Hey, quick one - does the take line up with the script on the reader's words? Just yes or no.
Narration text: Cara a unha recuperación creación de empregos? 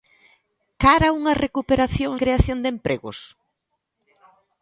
yes